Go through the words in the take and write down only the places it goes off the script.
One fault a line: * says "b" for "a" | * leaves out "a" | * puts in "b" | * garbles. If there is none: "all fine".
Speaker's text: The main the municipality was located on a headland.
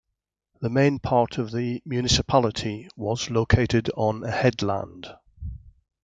* puts in "part of"